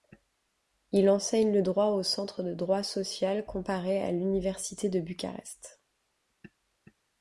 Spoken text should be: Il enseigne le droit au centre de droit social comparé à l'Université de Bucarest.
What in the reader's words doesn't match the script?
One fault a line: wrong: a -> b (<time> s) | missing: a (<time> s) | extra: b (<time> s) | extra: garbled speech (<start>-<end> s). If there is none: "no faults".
no faults